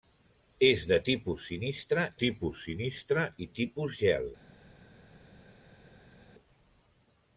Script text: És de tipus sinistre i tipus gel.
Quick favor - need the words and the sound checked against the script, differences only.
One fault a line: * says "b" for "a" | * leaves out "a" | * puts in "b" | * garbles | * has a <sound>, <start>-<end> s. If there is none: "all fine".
* puts in "tipus sinistre"